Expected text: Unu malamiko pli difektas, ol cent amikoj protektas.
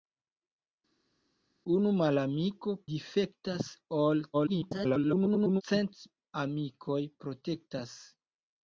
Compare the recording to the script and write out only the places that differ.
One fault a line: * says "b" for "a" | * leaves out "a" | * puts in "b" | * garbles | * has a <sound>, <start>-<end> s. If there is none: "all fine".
* leaves out "pli"
* garbles